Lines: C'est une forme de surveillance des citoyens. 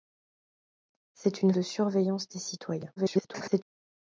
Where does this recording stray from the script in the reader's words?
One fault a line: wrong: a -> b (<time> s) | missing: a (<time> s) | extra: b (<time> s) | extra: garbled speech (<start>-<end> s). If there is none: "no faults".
missing: forme (1.5 s)
extra: garbled speech (3.0-3.6 s)